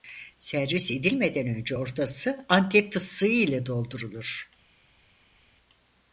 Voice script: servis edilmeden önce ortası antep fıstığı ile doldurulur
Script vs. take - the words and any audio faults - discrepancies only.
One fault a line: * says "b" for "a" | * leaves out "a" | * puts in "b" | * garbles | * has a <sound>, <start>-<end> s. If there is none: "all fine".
all fine